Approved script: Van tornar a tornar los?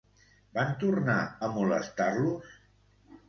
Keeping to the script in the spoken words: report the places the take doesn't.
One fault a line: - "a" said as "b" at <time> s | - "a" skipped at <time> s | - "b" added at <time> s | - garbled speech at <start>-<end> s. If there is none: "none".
- "tornar" said as "molestar" at 1.6 s